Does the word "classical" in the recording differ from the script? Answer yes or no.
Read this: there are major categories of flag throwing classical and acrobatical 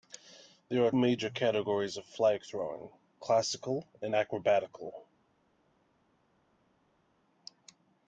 no